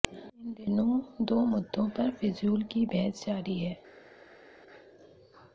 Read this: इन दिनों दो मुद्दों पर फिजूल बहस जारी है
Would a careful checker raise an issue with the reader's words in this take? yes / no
yes